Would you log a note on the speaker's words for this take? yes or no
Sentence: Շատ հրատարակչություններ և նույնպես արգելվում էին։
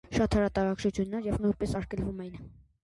no